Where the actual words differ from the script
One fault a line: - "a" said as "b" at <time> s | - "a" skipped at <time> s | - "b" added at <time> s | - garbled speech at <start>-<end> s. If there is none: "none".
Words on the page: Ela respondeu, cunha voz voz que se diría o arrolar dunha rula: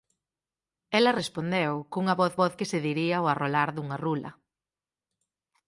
none